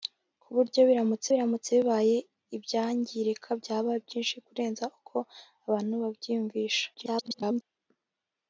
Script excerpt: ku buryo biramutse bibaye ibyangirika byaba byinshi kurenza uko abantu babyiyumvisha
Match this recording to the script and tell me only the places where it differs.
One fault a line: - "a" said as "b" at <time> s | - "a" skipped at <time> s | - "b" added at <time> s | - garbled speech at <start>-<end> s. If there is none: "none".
- "biramutse" added at 1.3 s
- garbled speech at 6.9-7.6 s